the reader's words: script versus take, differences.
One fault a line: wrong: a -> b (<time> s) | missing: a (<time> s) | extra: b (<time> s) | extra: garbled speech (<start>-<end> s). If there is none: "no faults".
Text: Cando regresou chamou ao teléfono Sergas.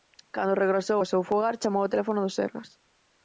extra: ao seu fogar (1.0 s)
extra: do (2.2 s)